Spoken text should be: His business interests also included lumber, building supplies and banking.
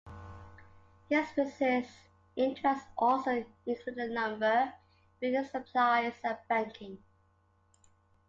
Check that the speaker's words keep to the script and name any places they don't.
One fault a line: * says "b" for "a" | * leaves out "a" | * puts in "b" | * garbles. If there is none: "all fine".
all fine